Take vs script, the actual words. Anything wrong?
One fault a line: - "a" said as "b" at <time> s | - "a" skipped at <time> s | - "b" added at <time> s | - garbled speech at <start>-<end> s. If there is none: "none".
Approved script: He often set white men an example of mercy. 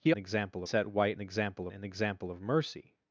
- "often" said as "example" at 0.2 s
- "men" said as "example" at 1.2 s